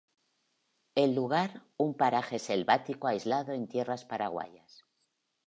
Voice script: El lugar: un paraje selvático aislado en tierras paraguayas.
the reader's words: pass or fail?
pass